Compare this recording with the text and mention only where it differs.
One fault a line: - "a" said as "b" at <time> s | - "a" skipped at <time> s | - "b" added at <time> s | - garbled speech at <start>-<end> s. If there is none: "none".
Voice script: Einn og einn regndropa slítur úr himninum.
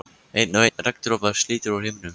none